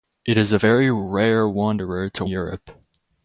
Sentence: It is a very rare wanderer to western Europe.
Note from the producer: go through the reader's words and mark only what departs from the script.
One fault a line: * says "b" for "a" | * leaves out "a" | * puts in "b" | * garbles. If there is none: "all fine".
* leaves out "western"